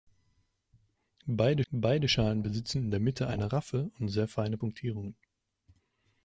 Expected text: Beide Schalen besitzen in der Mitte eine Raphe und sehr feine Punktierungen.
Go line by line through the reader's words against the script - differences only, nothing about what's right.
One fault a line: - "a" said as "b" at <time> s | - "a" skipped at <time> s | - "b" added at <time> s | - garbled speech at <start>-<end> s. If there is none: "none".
- "beide" added at 1.7 s